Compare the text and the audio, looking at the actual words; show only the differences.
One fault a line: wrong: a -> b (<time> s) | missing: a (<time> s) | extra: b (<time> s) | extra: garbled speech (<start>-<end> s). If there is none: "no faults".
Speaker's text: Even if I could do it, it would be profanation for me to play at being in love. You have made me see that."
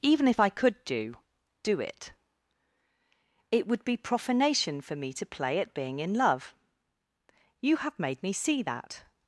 extra: do (1.6 s)